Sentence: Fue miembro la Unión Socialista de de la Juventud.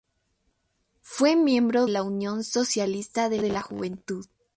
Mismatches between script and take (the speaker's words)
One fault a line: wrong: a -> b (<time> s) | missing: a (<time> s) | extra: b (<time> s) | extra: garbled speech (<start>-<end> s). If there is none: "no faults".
no faults